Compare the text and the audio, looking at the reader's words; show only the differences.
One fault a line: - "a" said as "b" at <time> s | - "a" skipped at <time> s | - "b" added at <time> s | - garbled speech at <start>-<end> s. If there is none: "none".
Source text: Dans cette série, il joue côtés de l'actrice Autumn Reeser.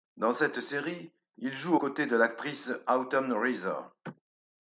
none